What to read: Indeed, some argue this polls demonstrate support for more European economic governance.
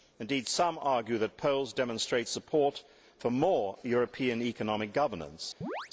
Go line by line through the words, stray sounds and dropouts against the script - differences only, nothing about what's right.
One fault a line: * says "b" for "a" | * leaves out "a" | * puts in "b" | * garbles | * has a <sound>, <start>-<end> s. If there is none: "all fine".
* says "that" for "this"
* has a chirp, 5.6-5.9 s